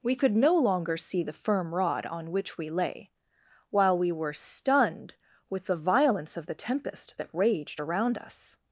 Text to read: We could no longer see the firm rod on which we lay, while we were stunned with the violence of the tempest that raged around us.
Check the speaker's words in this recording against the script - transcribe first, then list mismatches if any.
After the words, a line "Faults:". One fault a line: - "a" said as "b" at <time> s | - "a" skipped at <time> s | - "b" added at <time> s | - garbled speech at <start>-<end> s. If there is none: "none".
We could no longer see the firm rod on which we lay, while we were stunned with the violence of the tempest that raged around us.
Faults:
none